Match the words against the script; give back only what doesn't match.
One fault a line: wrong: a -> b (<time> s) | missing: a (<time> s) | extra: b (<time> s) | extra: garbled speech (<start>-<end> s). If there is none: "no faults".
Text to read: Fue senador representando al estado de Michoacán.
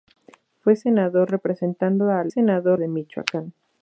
wrong: estado -> senador (2.3 s)